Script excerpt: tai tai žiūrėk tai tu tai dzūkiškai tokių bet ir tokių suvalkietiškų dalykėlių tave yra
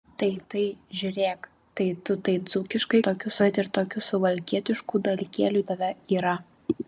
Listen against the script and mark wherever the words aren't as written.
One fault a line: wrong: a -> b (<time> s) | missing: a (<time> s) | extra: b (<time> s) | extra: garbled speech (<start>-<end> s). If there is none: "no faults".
no faults